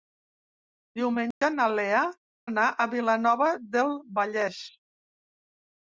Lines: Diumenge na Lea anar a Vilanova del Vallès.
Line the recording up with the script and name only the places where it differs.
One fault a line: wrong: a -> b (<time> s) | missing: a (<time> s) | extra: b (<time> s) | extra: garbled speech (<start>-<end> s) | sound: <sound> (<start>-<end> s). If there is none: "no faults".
sound: dropout (1.3-1.4 s)